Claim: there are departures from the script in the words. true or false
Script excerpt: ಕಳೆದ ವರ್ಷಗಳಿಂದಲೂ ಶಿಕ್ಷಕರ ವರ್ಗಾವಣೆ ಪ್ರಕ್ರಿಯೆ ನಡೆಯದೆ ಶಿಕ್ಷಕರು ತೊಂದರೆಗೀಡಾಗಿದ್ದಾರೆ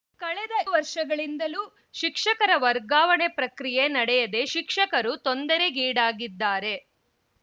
false